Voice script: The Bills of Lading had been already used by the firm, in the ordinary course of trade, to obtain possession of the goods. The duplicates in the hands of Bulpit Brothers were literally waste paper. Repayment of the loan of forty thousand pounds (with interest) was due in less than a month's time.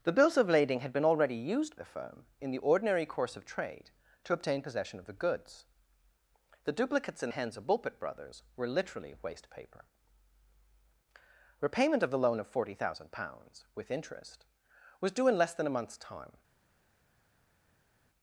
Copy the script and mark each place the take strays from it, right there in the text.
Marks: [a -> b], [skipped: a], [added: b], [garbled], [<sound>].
The Bills of Lading had been already used [skipped: by] the firm, in the ordinary course of trade, to obtain possession of the goods. The duplicates in [skipped: the] hands of Bulpit Brothers were literally waste paper. Repayment of the loan of forty thousand pounds (with interest) was due in less than a month's time.